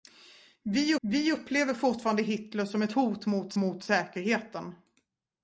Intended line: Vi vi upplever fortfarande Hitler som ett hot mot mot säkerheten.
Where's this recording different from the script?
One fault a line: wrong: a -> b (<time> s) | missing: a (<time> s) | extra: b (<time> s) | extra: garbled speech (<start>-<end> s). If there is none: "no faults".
no faults